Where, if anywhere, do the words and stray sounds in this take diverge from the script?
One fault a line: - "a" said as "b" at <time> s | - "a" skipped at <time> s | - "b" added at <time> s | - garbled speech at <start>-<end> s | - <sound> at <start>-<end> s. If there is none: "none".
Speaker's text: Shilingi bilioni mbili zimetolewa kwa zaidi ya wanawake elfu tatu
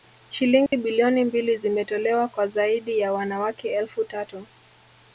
- dropout at 0.7-0.7 s